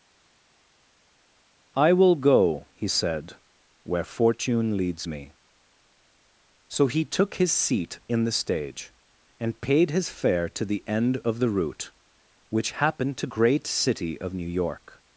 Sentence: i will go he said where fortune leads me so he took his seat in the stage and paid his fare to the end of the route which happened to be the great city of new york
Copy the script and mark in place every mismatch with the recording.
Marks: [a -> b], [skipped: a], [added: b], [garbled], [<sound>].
i will go he said where fortune leads me so he took his seat in the stage and paid his fare to the end of the route which happened to [skipped: be the] great city of new york